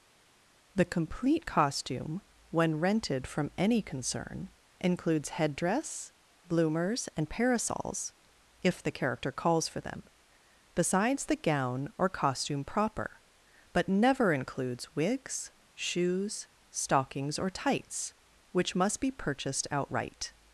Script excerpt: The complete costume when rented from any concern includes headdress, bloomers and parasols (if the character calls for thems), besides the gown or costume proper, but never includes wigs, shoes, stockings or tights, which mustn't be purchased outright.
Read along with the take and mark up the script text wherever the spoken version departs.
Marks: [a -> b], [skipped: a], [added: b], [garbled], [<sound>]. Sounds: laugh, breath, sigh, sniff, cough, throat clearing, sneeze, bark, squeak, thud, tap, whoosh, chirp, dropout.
The complete costume when rented from any concern includes headdress, bloomers and parasols (if the character calls for [thems), -> them] besides the gown or costume proper, but never includes wigs, shoes, stockings or tights, which [mustn't -> must] be purchased outright.